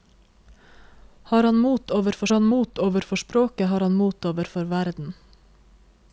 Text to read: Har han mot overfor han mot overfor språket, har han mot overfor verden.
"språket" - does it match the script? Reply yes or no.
yes